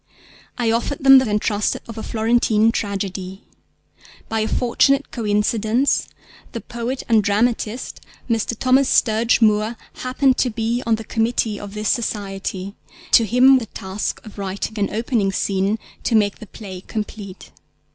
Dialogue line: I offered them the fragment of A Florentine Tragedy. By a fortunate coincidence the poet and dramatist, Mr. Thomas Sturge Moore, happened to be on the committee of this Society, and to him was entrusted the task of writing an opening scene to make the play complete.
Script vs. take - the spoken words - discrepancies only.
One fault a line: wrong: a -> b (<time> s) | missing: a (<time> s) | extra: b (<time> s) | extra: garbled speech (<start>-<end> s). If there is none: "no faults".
wrong: fragment -> entrusted (1.3 s)
missing: and (12.7 s)
missing: was entrusted (13.6 s)